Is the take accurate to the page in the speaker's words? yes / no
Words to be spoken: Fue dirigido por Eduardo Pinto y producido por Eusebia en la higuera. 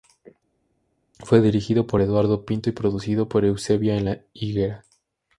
yes